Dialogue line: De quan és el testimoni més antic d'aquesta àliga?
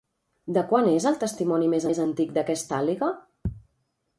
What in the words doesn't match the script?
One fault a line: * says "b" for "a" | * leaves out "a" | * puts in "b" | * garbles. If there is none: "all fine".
* puts in "més"